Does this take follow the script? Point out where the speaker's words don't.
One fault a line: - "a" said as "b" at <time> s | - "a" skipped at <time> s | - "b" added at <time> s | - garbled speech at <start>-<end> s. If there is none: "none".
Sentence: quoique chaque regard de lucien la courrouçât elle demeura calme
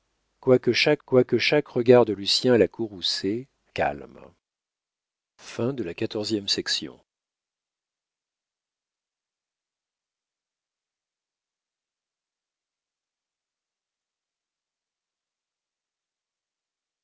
- "quoique chaque" added at 1.0 s
- "elle demeura" skipped at 3.5 s